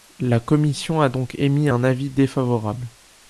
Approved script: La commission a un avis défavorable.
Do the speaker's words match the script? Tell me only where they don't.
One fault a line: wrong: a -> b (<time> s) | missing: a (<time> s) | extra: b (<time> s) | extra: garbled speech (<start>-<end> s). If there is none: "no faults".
extra: donc émis (1.1 s)